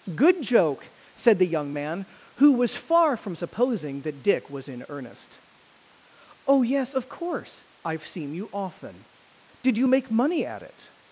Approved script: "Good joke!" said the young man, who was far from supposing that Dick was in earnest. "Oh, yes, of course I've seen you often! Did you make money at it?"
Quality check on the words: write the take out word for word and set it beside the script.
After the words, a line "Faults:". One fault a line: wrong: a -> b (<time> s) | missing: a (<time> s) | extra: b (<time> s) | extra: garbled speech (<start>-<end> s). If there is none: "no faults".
"Good joke!" said the young man, who was far from supposing that Dick was in earnest. "Oh, yes, of course I've seen you often! Did you make money at it?"
Faults:
no faults